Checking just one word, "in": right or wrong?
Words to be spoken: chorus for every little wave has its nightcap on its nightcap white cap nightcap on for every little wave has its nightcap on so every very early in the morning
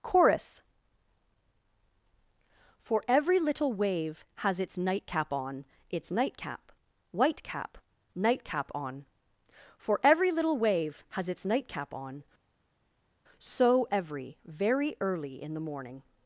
right